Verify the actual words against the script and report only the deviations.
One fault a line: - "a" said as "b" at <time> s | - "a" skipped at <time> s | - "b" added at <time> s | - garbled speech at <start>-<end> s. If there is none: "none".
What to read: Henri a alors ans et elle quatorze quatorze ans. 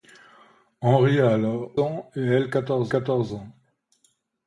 none